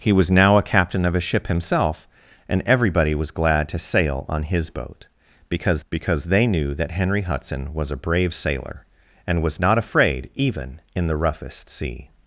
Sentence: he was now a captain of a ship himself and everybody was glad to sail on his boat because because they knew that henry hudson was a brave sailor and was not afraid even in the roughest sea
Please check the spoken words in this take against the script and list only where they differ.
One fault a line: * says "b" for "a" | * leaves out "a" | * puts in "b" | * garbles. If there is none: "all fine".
all fine